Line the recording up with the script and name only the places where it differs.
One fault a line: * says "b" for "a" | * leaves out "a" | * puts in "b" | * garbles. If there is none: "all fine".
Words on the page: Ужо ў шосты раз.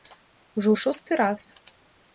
all fine